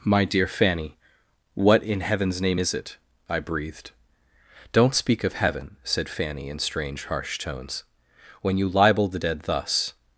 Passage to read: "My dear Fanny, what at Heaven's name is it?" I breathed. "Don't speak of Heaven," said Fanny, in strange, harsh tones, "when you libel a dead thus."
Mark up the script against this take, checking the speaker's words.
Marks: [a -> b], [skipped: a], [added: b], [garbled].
"My dear Fanny, what [at -> in] Heaven's name is it?" I breathed. "Don't speak of Heaven," said Fanny, in strange, harsh tones, "when you libel [a -> the] dead thus."